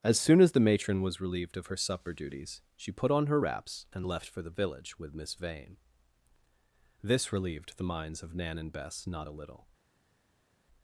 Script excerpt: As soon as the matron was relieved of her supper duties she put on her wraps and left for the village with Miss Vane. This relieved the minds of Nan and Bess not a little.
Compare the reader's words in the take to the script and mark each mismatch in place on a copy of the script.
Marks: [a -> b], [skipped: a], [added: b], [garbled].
As soon as the matron was relieved of her supper duties she put on her wraps and left for the village with Miss Vane. This relieved the minds of Nan and Bess not a little.